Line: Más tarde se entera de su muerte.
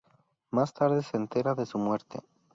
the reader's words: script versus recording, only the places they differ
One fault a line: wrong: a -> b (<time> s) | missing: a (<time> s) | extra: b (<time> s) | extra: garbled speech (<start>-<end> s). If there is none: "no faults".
no faults